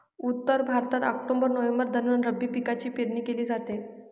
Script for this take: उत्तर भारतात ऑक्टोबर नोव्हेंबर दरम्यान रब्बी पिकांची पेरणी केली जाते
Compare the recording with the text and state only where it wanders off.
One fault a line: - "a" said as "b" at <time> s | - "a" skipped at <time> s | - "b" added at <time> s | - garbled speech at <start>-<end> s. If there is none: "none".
none